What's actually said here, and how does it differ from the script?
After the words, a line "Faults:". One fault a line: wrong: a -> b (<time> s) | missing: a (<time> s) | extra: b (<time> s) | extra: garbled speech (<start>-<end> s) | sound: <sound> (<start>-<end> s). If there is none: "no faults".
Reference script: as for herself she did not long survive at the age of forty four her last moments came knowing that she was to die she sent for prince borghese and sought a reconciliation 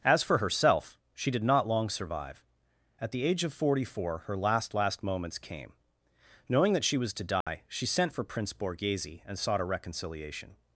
as for herself she did not long survive at the age of forty four her last last moments came knowing that she was to die she sent for prince borghese and sought a reconciliation
Faults:
extra: last (4.7 s)
sound: dropout (7.4-7.5 s)